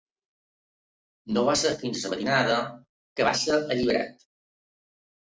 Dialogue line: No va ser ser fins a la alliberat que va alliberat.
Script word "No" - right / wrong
right